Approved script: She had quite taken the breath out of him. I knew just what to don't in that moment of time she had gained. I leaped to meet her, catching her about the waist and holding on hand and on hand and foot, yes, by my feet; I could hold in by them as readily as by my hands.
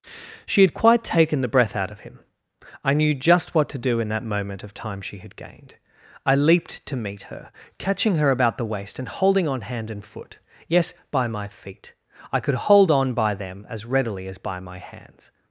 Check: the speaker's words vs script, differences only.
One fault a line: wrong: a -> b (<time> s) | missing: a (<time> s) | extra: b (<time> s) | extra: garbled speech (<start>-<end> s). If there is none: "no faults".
wrong: don't -> do (3.8 s)
missing: on hand and (10.0 s)
wrong: in -> on (12.9 s)